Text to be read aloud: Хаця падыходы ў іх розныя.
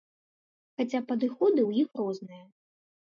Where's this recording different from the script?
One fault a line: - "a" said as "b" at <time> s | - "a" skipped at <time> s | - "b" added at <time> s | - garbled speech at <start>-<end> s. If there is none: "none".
none